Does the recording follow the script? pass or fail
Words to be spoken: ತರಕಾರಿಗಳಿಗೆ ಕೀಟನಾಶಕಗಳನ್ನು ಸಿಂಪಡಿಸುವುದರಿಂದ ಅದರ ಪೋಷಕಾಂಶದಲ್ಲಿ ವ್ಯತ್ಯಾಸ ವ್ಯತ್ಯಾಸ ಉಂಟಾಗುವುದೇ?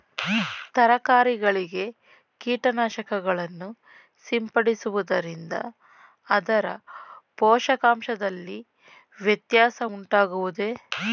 fail